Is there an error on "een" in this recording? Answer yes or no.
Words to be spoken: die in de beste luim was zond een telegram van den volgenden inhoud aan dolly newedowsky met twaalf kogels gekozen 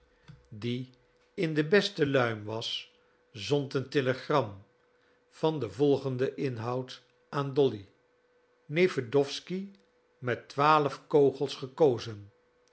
no